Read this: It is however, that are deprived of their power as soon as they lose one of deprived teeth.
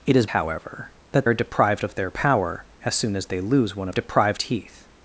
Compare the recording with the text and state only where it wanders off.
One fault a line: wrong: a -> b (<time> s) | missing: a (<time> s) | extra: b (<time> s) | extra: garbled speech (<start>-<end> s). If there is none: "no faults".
no faults